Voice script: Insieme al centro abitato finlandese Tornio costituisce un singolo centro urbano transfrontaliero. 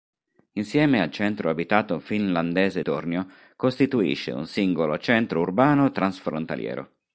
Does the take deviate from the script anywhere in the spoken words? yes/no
no